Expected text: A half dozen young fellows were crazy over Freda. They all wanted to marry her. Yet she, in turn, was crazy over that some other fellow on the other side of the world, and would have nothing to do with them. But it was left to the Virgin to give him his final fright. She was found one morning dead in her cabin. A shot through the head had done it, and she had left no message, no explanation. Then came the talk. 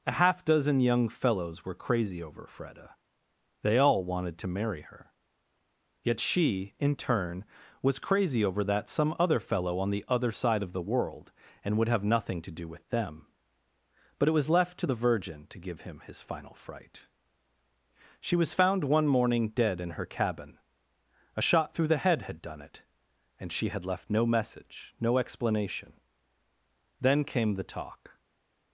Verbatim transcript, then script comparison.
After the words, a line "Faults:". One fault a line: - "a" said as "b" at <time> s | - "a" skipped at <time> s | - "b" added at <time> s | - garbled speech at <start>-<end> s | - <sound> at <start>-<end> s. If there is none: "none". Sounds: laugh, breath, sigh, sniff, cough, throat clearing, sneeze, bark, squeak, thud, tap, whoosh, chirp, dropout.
A half dozen young fellows were crazy over Freda. They all wanted to marry her. Yet she, in turn, was crazy over that some other fellow on the other side of the world, and would have nothing to do with them. But it was left to the Virgin to give him his final fright. She was found one morning dead in her cabin. A shot through the head had done it, and she had left no message, no explanation. Then came the talk.
Faults:
none